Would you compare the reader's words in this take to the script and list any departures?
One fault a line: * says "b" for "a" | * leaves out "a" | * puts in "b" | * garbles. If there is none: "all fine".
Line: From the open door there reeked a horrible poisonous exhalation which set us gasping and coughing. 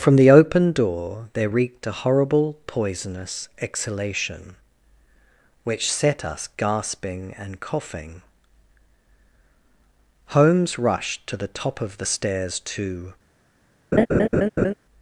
* puts in "Holmes rushed to the top of the stairs to"